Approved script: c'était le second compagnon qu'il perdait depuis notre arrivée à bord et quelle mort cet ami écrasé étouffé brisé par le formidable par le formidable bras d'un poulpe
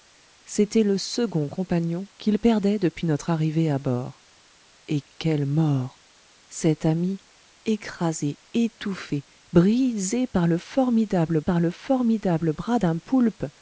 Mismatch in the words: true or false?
false